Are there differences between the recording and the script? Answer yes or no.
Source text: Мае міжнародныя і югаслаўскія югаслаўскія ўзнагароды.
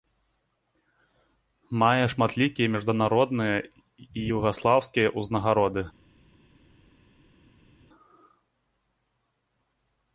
yes